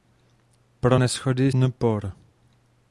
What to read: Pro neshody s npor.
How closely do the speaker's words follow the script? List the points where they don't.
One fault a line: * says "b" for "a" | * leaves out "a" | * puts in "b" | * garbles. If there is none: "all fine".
* leaves out "s"